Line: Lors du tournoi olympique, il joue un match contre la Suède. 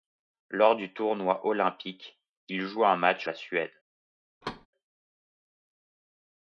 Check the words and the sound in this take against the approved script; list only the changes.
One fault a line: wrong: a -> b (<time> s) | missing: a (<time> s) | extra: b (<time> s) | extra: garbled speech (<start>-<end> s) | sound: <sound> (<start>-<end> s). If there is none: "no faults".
missing: contre (3.3 s)
sound: thud (4.4-4.7 s)